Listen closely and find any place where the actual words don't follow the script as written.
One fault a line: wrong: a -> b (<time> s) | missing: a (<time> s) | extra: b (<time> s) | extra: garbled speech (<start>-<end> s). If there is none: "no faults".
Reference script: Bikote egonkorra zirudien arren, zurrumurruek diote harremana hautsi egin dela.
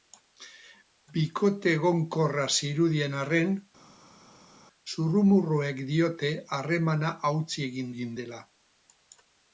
extra: egin (7.9 s)